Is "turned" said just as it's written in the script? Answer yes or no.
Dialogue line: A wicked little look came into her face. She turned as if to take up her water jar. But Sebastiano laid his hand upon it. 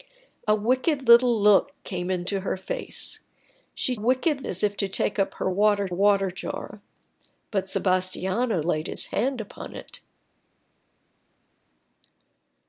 no